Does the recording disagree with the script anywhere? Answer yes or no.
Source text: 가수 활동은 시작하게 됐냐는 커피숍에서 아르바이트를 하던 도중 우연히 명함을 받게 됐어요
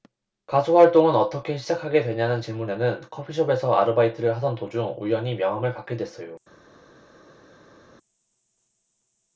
yes